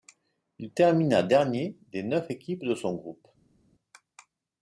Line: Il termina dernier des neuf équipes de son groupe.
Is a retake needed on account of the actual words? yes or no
no